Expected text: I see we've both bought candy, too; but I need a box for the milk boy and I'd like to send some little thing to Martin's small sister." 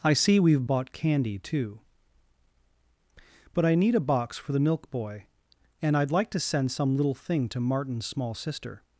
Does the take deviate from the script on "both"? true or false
true